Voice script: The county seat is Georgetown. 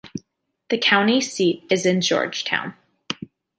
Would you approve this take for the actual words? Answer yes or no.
yes